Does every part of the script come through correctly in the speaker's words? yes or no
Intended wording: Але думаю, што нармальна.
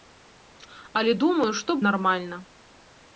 yes